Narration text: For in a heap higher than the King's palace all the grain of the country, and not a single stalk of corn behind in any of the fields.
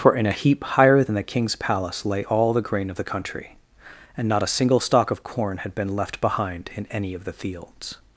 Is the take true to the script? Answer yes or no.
no